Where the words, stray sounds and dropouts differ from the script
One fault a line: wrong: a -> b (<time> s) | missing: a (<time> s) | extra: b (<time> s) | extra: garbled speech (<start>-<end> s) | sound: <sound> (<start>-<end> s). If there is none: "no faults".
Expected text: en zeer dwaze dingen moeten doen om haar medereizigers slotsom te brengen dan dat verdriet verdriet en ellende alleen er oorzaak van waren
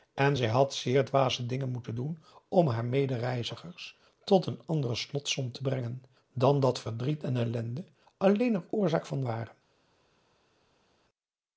extra: zij had (0.4 s)
extra: tot een andere (4.2 s)
missing: verdriet (7.2 s)